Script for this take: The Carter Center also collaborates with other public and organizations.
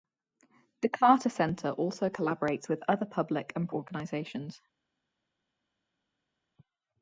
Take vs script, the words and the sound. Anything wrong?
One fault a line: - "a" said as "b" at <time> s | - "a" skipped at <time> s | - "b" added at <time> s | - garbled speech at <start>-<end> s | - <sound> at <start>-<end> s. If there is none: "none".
none